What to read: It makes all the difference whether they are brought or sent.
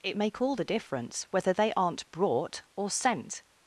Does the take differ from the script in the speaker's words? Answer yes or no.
yes